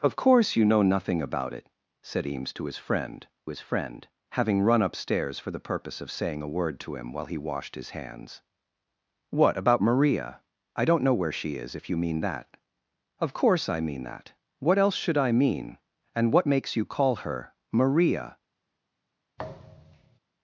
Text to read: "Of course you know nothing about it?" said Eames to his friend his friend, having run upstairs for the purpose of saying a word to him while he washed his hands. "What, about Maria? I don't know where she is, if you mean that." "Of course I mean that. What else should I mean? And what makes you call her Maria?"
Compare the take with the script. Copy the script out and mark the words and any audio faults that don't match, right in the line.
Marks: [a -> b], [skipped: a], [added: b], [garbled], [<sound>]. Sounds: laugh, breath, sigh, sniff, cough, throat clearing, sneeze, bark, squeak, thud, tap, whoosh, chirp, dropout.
"Of course you know nothing about it?" said Eames to his friend his friend, having run upstairs for the purpose of saying a word to him while he washed his hands. "What, about Maria? I don't know where she is, if you mean that." "Of course I mean that. What else should I mean? And what makes you call her Maria?" [thud]